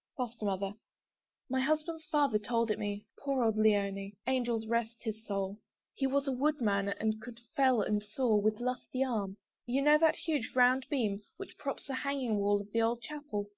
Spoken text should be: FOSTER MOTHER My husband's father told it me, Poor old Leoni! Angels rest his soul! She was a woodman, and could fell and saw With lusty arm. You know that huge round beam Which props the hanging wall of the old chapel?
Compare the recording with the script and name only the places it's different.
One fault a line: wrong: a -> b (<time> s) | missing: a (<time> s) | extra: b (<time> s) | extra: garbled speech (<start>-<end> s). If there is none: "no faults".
wrong: She -> He (5.9 s)